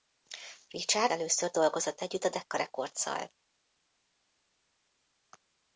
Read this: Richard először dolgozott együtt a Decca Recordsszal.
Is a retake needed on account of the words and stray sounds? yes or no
no